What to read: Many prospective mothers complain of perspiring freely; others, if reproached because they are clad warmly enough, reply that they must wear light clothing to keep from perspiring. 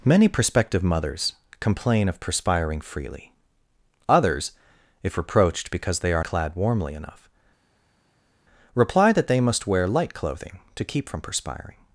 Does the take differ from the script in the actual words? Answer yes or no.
no